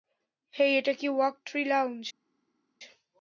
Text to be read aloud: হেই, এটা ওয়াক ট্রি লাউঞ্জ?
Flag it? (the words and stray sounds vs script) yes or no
yes